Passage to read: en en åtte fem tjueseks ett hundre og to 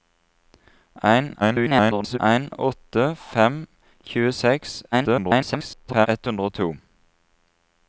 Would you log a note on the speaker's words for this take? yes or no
yes